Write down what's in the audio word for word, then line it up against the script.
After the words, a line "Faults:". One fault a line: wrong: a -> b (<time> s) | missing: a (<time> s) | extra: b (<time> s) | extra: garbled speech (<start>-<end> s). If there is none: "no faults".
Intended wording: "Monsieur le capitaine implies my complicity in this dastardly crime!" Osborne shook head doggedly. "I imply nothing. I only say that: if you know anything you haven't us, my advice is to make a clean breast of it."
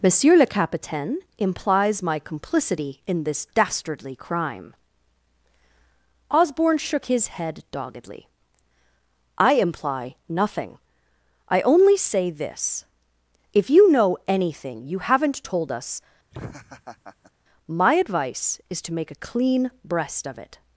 "Monsieur le capitaine implies my complicity in this dastardly crime!" Osborne shook his head doggedly. "I imply nothing. I only say this: if you know anything you haven't told us, my advice is to make a clean breast of it."
Faults:
extra: his (7.0 s)
wrong: that -> this (12.3 s)
extra: told (15.4 s)